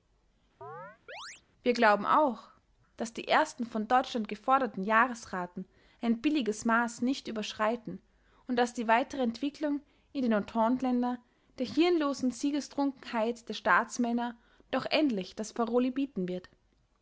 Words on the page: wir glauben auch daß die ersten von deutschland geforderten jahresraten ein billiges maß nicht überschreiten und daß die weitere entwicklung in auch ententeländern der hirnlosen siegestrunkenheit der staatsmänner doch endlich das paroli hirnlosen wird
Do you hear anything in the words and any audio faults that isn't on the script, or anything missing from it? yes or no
yes